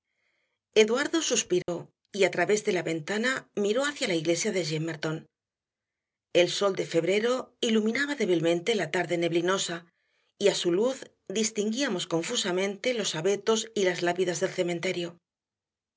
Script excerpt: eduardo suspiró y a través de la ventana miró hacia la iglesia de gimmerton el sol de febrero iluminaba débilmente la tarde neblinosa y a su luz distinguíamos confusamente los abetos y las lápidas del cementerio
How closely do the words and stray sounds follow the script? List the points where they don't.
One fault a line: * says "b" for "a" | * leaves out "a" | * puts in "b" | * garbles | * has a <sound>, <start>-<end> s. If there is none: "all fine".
* has a dropout, 1.6-1.7 s